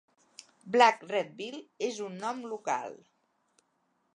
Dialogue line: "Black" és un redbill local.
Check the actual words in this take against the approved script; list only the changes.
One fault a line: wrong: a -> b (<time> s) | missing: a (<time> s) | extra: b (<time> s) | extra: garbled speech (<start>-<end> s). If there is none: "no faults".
extra: redbill (1.1 s)
wrong: redbill -> nom (2.2 s)